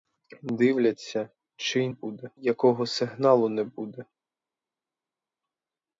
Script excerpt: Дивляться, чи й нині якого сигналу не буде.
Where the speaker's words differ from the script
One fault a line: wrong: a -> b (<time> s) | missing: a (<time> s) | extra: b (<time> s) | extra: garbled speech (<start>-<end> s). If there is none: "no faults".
wrong: нині -> буде (1.9 s)